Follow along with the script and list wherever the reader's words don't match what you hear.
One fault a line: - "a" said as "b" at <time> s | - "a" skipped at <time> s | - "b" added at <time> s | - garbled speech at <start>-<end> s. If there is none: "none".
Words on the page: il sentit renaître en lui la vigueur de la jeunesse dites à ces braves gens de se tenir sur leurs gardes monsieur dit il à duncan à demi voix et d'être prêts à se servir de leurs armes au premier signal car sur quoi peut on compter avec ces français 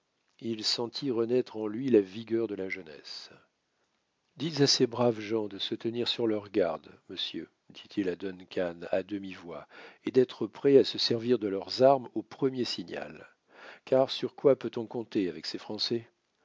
none